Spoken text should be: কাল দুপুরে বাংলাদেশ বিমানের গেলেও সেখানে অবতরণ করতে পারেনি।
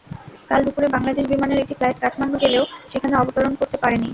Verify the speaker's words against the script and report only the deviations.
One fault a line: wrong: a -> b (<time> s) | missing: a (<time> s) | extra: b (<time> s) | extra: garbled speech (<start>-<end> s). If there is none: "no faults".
extra: একটি ফ্লাইট কাঠমান্ডু (1.6 s)